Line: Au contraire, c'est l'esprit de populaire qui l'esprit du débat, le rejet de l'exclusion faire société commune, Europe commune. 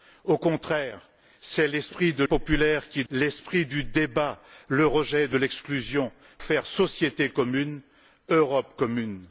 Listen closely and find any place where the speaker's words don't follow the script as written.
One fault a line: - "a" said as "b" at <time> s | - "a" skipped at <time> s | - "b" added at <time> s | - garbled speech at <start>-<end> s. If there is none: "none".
none